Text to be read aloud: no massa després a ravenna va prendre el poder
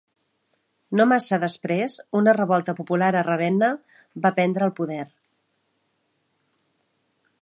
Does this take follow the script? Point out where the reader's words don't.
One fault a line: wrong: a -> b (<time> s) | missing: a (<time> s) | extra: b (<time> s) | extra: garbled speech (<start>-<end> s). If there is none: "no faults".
extra: una revolta popular (2.2 s)